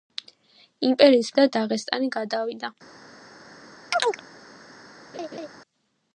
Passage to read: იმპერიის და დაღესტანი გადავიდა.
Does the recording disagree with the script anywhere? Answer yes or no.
no